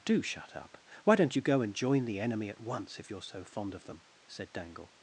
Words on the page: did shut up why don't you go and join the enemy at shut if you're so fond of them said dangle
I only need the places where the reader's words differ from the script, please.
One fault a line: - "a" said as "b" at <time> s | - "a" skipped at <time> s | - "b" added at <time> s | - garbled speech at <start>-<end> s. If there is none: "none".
- "did" said as "do" at 0.0 s
- "shut" said as "once" at 2.6 s